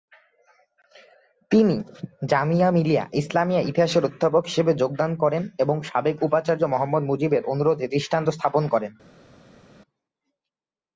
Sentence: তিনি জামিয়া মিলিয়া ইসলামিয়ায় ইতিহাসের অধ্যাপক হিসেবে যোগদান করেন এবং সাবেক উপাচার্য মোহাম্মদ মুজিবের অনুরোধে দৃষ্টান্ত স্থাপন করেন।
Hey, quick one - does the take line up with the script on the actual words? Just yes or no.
yes